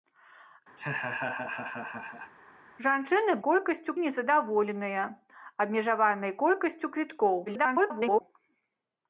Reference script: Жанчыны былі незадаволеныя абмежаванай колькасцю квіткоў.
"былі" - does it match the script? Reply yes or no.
no